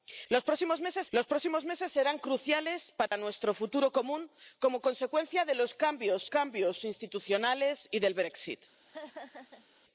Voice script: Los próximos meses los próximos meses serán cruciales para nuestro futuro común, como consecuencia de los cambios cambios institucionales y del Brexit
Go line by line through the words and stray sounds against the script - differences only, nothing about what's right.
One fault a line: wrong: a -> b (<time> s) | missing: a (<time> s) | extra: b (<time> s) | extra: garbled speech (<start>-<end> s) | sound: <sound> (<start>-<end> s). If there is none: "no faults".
sound: dropout (3.1-3.1 s)
sound: laugh (8.9-9.7 s)